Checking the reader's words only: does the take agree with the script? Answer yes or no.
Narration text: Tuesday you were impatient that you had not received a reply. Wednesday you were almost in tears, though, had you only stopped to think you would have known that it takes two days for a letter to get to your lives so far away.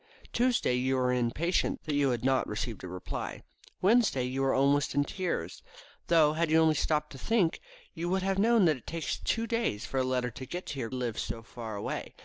yes